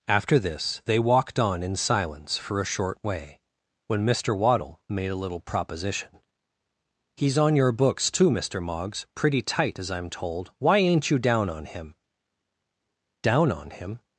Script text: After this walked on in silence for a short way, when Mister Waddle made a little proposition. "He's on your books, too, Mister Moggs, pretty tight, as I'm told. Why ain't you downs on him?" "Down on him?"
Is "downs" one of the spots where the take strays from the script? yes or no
yes